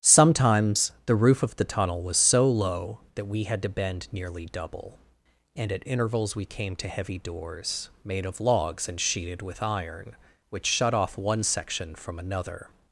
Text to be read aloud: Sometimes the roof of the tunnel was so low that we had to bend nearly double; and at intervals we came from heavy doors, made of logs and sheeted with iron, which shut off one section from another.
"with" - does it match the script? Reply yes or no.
yes